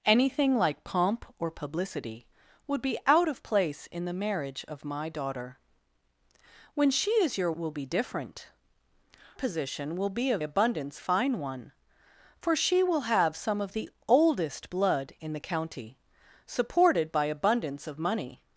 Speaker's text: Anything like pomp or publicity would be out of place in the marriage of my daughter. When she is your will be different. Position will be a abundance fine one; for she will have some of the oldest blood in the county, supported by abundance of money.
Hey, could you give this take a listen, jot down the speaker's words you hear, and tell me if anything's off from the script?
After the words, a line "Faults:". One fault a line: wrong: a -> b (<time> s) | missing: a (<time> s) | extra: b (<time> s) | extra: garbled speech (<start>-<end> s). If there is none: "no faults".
Anything like pomp or publicity would be out of place in the marriage of my daughter. When she is your will be different. Position will be a abundance fine one; for she will have some of the oldest blood in the county, supported by abundance of money.
Faults:
no faults